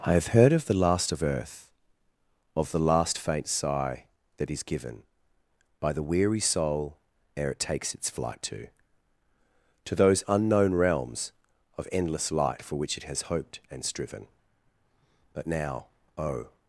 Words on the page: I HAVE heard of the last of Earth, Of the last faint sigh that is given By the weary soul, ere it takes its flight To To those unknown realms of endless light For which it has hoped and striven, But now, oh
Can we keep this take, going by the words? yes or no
yes